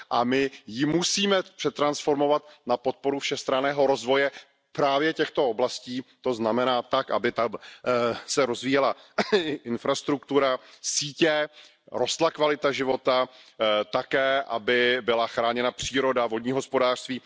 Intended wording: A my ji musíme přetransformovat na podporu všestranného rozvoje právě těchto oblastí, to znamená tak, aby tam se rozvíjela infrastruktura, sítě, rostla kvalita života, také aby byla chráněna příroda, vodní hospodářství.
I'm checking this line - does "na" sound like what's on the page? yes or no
yes